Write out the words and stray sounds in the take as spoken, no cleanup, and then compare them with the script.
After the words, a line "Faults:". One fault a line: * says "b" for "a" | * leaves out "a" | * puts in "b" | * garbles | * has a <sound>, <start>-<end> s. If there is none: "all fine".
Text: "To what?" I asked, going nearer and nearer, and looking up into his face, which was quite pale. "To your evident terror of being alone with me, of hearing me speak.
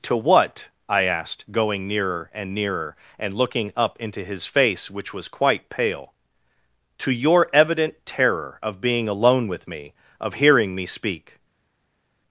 "To what?" I asked, going nearer and nearer, and looking up into his face, which was quite pale. "To your evident terror of being alone with me, of hearing me speak.
Faults:
all fine